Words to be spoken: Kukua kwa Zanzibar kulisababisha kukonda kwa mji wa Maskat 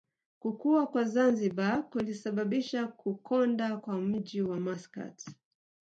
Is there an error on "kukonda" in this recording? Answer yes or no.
no